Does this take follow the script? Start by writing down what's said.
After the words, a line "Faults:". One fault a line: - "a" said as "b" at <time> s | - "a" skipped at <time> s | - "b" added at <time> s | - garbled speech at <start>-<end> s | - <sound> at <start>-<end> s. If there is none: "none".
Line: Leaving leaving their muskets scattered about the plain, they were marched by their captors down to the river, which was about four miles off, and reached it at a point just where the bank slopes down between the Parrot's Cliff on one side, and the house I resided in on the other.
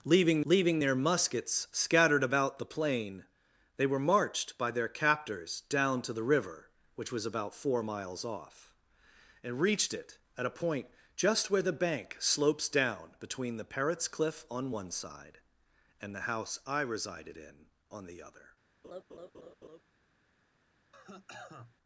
Leaving leaving their muskets scattered about the plain, they were marched by their captors down to the river, which was about four miles off, and reached it at a point just where the bank slopes down between the Parrot's Cliff on one side, and the house I resided in on the other.
Faults:
- laugh at 18.8-19.8 s
- cough at 20.9-21.8 s